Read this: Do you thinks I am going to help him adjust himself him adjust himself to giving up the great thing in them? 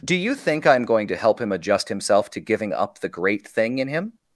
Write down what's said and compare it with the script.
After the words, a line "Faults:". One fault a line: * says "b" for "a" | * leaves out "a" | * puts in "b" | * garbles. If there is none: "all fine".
Do you think I am going to help him adjust himself to giving up the great thing in him?
Faults:
* says "think" for "thinks"
* leaves out "him adjust himself"
* says "him" for "them"